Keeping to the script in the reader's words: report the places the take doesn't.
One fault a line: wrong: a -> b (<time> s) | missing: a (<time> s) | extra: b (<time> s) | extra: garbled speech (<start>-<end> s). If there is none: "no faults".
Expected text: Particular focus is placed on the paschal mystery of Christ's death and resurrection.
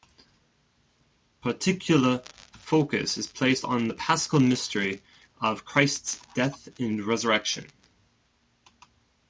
no faults